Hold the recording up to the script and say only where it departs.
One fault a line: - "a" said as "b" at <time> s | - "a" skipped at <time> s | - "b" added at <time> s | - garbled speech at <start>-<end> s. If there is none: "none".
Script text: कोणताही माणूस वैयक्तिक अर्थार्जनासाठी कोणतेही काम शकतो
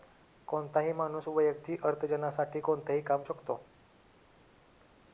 none